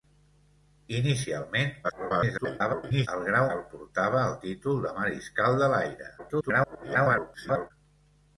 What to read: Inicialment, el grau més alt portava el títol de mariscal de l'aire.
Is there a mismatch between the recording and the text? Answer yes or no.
yes